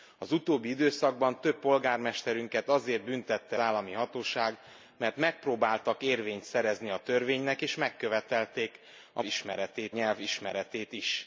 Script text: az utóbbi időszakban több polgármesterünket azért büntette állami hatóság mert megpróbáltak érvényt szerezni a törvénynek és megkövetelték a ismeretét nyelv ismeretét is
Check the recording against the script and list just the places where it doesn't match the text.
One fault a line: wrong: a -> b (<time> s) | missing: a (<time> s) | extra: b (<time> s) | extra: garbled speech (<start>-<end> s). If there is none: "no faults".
no faults